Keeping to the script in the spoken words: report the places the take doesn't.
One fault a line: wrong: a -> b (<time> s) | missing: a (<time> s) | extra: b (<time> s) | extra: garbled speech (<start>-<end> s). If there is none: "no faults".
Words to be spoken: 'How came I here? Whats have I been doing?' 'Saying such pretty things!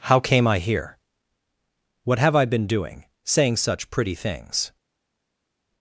wrong: Whats -> What (2.0 s)